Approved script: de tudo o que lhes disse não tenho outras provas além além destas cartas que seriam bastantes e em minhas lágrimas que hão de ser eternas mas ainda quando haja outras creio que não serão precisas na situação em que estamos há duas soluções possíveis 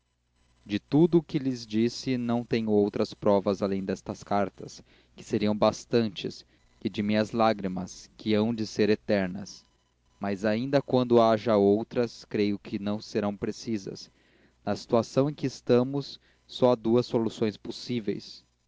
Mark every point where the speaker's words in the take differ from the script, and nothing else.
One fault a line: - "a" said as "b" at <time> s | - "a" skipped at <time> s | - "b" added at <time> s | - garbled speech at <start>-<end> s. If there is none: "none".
- "além" skipped at 3.8 s
- "em" said as "de" at 6.9 s
- "só" added at 16.5 s